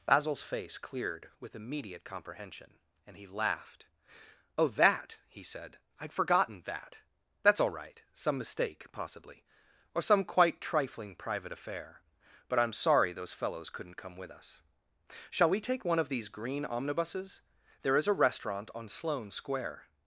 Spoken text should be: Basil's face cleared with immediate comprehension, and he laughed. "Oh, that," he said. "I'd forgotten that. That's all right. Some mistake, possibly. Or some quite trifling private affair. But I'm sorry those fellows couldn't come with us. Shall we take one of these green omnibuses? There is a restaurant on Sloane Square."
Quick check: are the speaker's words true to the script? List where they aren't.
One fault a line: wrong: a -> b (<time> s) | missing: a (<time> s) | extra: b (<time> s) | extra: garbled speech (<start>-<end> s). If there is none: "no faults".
no faults